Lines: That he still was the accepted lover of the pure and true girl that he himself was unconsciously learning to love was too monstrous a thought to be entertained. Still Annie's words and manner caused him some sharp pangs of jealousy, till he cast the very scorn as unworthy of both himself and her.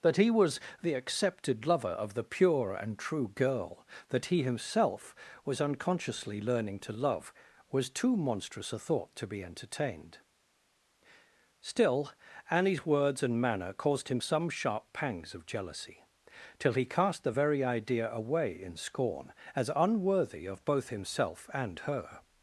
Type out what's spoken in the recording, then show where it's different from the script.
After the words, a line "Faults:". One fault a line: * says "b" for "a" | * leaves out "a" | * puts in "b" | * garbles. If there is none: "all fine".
That he was the accepted lover of the pure and true girl that he himself was unconsciously learning to love was too monstrous a thought to be entertained. Still Annie's words and manner caused him some sharp pangs of jealousy, till he cast the very idea away in scorn as unworthy of both himself and her.
Faults:
* leaves out "still"
* puts in "idea away in"